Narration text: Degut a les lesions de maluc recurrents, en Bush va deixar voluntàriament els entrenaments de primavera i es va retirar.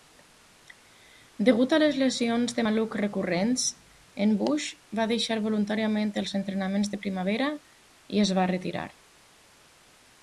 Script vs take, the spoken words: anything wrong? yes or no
no